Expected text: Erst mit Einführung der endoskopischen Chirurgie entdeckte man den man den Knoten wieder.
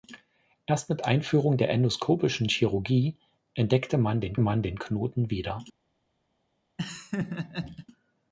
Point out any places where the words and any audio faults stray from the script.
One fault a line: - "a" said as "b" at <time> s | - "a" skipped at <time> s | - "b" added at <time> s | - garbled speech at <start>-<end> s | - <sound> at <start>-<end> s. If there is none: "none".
- laugh at 6.8-7.9 s